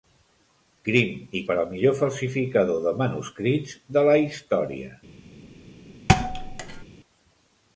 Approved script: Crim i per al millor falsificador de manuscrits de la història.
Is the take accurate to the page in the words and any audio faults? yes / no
no